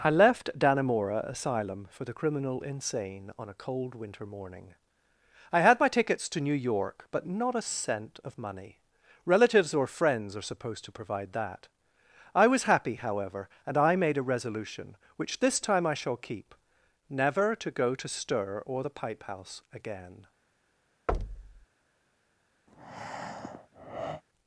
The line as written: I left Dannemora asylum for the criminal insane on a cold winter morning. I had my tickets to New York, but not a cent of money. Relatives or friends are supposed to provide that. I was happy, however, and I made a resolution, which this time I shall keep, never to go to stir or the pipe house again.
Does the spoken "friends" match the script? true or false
true